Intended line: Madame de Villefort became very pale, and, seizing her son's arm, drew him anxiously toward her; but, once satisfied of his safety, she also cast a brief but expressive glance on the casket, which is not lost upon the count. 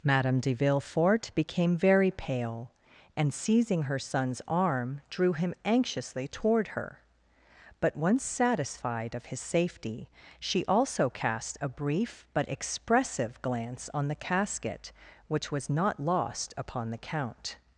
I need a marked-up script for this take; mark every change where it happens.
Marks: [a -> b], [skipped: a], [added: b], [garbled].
Madame de Villefort became very pale, and, seizing her son's arm, drew him anxiously toward her; but, once satisfied of his safety, she also cast a brief but expressive glance on the casket, which [is -> was] not lost upon the count.